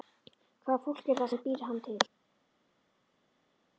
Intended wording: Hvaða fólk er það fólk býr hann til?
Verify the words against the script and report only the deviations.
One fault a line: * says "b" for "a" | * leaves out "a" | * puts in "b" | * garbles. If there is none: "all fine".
* says "sem" for "fólk"